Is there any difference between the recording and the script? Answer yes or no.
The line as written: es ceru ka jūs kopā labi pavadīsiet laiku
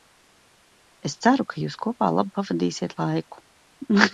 no